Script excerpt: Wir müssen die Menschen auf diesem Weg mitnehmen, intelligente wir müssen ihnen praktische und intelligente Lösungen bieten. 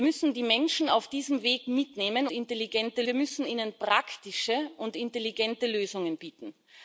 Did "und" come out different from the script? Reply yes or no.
no